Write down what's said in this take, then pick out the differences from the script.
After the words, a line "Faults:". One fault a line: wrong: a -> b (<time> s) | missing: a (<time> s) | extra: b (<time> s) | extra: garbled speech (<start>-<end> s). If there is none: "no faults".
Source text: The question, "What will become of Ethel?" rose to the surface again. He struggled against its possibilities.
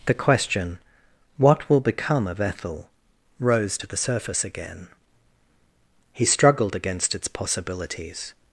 The question, "What will become of Ethel?" rose to the surface again. He struggled against its possibilities.
Faults:
no faults